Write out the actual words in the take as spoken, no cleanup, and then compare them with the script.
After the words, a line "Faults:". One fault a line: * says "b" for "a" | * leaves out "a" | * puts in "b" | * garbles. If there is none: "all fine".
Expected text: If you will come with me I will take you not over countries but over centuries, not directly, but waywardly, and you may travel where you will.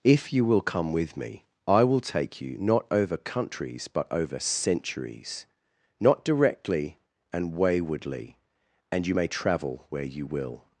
If you will come with me I will take you not over countries but over centuries, not directly, and waywardly, and you may travel where you will.
Faults:
* says "and" for "but"